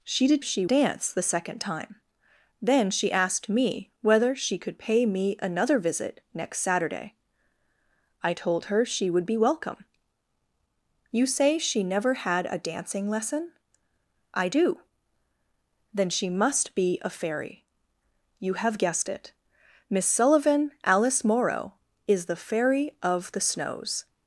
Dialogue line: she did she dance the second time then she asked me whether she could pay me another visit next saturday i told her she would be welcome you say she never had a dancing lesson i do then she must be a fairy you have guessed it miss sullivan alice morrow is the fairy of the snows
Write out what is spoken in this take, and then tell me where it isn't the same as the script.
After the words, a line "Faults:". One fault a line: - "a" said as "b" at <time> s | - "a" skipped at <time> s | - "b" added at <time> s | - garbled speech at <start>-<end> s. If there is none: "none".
she did she dance the second time then she asked me whether she could pay me another visit next saturday i told her she would be welcome you say she never had a dancing lesson i do then she must be a fairy you have guessed it miss sullivan alice morrow is the fairy of the snows
Faults:
none